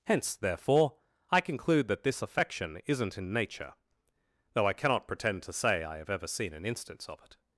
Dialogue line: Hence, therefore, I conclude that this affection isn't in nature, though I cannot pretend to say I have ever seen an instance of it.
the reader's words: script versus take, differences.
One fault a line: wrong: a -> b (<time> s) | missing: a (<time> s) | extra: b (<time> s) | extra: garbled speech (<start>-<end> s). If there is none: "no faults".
no faults